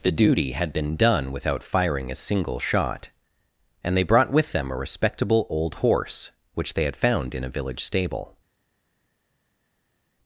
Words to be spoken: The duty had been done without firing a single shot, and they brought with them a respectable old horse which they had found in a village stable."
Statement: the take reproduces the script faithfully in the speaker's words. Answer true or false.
true